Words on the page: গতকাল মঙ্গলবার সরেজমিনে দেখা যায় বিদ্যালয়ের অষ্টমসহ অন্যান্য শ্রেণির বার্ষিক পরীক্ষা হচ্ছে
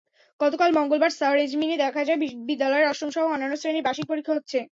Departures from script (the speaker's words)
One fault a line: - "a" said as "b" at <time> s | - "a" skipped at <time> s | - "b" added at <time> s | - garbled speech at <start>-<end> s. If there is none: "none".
none